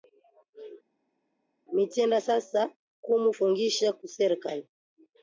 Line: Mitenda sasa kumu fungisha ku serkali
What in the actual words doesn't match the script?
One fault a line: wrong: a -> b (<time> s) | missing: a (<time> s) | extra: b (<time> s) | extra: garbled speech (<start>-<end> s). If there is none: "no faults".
no faults